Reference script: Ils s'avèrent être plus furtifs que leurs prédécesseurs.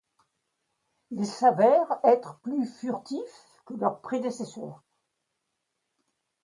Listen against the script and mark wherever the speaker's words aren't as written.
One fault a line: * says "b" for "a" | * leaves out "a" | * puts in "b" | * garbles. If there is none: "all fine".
all fine